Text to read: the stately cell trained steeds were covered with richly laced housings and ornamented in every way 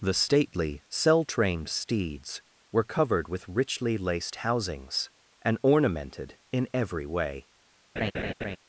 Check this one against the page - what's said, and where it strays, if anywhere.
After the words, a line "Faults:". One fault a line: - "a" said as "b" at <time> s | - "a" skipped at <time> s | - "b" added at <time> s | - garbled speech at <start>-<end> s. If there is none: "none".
the stately cell trained steeds were covered with richly laced housings and ornamented in every way
Faults:
none